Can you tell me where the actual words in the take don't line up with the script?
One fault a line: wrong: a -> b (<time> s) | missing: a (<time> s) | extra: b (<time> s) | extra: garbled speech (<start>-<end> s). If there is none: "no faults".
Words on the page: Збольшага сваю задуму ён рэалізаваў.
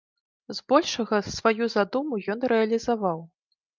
no faults